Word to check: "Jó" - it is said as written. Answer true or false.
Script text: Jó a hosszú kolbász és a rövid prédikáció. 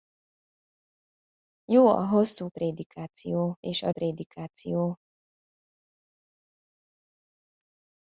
true